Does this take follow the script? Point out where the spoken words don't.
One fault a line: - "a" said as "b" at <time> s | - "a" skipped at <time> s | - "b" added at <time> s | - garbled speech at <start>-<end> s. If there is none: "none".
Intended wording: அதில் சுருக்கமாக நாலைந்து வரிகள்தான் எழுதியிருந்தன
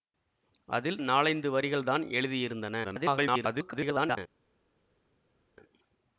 - "சுருக்கமாக" skipped at 1.0 s
- garbled speech at 2.8-4.2 s